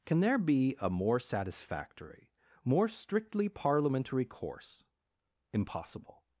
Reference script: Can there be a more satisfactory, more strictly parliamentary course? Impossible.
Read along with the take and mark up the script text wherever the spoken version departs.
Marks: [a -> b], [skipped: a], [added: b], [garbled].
Can there be a more satisfactory, more strictly parliamentary course? Impossible.